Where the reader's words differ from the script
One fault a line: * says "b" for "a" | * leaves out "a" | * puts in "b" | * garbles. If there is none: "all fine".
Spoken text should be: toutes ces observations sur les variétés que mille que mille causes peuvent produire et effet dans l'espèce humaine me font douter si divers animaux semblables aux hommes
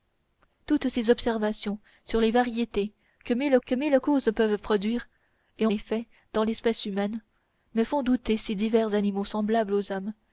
all fine